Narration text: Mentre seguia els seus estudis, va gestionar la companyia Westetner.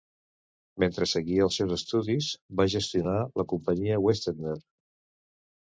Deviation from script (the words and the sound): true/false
false